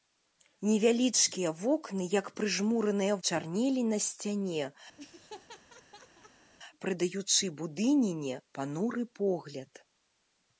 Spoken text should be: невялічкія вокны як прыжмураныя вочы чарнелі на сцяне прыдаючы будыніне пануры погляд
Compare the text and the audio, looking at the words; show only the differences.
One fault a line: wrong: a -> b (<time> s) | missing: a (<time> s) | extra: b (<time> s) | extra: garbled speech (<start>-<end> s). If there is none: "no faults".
missing: вочы (3.2 s)